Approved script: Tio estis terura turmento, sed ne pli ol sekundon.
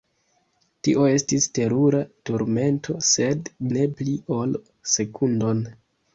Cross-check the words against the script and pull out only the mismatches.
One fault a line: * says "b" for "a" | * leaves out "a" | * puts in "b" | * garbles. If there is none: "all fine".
all fine